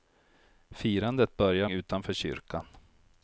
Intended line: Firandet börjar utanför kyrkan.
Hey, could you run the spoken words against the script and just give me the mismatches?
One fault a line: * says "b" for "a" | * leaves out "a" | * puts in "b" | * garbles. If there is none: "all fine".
all fine